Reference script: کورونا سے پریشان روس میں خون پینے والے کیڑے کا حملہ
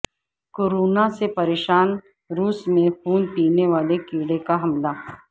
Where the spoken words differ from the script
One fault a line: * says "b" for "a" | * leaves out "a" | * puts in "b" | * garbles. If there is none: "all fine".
all fine